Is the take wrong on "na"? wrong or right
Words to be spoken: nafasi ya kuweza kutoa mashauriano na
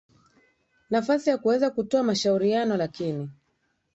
wrong